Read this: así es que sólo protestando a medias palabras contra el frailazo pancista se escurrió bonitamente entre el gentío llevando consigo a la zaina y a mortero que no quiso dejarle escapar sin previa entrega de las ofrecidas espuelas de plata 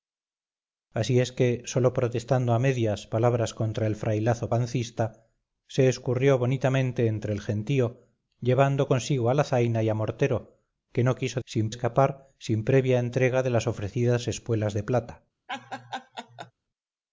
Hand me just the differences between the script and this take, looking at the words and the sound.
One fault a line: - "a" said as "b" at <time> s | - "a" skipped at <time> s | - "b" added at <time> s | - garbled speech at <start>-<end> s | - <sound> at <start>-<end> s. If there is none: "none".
- "dejarle" said as "sin" at 11.4 s
- laugh at 15.5-16.5 s